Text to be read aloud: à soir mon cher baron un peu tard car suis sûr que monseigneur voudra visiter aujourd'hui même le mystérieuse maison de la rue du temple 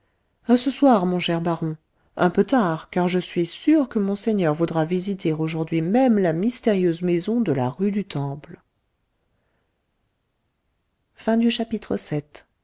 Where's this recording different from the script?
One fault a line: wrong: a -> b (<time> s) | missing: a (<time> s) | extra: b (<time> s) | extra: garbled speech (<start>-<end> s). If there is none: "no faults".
extra: ce (0.6 s)
extra: je (3.1 s)
wrong: le -> la (6.2 s)